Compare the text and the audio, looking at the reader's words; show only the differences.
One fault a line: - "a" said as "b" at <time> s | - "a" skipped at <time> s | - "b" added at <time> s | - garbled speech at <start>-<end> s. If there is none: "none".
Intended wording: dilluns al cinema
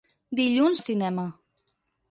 none